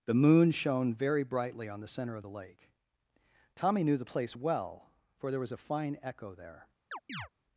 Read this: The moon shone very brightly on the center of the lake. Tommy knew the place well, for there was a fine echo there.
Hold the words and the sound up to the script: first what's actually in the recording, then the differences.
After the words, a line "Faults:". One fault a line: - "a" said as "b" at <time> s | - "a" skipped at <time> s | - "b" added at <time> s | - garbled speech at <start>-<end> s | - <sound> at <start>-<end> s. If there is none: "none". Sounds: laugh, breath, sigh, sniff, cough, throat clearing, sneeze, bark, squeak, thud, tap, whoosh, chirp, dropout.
The moon shone very brightly on the center of the lake. Tommy knew the place well, for there was a fine echo there.
Faults:
- chirp at 6.9-7.3 s